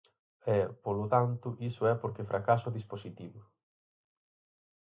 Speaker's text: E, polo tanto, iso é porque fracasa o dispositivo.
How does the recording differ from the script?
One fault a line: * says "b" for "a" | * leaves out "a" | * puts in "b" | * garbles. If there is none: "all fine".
all fine